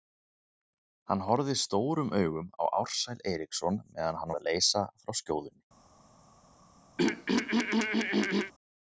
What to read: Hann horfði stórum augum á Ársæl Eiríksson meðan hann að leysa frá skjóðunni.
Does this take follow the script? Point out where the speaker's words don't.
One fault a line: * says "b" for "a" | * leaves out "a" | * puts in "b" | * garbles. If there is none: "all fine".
all fine